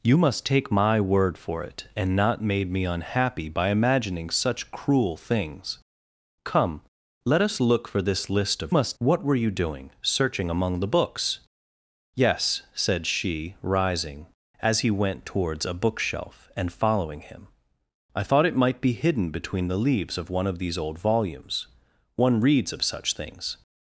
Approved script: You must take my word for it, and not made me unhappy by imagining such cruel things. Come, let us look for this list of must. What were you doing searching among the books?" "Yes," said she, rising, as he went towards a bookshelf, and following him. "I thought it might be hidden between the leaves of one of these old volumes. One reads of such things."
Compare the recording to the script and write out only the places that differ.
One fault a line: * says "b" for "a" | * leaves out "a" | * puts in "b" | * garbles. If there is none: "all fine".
all fine